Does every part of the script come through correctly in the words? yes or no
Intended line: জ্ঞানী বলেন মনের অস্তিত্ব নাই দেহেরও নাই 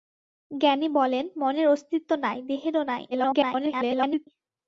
no